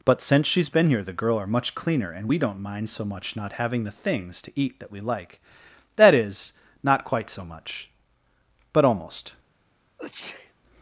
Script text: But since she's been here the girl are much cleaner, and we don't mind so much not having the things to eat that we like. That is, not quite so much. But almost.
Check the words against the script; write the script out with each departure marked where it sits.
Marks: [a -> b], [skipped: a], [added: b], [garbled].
But since she's been here the girl are much cleaner, and we don't mind so much not having the things to eat that we like. That is, not quite so much. But almost.